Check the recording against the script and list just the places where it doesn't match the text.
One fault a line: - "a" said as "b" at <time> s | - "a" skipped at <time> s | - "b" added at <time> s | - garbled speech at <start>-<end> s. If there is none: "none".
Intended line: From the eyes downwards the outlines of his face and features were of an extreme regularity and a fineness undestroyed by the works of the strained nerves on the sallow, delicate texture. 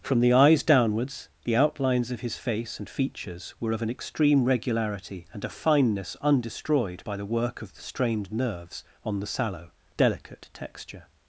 - "works" said as "work" at 7.2 s